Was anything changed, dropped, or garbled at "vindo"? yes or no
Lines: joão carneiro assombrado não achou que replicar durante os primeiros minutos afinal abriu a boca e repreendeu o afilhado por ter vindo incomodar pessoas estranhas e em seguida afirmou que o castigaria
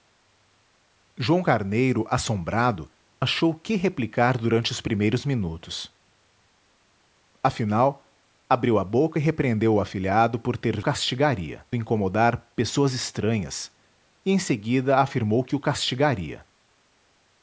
yes